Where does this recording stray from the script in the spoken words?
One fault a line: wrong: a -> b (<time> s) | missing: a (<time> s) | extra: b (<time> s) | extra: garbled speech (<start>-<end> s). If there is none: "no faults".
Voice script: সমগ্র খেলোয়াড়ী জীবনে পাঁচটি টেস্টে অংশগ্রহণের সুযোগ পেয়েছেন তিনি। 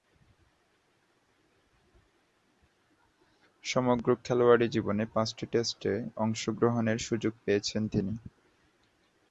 no faults